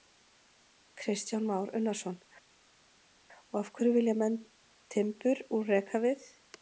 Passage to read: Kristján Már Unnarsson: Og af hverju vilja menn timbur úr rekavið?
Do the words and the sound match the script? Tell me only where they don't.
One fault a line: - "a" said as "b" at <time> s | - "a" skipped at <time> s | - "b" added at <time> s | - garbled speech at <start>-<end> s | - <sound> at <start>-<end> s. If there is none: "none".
none